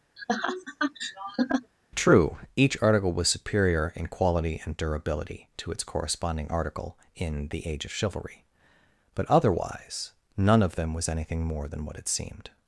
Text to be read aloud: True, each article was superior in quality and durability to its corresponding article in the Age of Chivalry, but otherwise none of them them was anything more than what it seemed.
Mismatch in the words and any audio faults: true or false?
true